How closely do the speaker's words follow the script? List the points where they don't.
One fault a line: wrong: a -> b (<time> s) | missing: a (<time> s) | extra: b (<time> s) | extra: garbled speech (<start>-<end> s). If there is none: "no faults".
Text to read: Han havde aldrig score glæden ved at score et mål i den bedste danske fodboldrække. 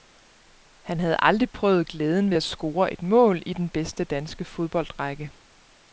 wrong: score -> prøvet (1.5 s)